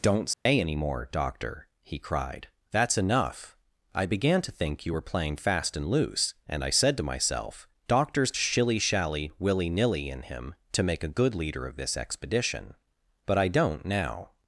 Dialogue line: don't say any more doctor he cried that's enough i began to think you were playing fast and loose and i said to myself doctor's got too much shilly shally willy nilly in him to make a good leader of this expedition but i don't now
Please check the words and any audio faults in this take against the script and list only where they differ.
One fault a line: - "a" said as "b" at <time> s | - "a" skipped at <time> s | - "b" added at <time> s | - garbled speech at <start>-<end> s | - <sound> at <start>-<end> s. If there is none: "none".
- dropout at 0.3-0.5 s
- "got too much" skipped at 8.3 s